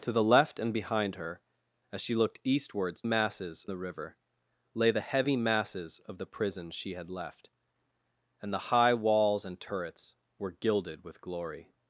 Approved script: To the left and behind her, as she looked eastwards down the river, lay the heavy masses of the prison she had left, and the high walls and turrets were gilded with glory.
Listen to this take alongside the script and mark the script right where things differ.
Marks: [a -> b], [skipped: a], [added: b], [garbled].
To the left and behind her, as she looked eastwards [down -> masses] the river, lay the heavy masses of the prison she had left, and the high walls and turrets were gilded with glory.